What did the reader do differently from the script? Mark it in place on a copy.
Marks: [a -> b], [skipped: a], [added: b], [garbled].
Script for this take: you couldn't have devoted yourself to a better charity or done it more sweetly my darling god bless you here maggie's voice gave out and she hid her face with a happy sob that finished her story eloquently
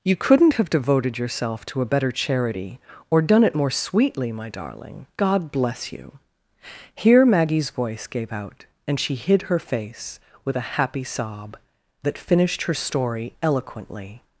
you couldn't have devoted yourself to a better charity or done it more sweetly my darling god bless you here maggie's voice gave out and she hid her face with a happy sob that finished her story eloquently